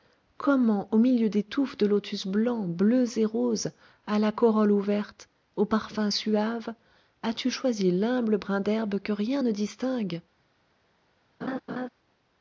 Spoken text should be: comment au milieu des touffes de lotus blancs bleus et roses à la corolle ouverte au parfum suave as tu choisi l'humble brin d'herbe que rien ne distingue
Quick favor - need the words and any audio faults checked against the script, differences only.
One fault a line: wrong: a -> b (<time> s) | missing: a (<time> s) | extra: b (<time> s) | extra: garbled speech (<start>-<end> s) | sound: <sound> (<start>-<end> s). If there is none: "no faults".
sound: laugh (11.4-11.9 s)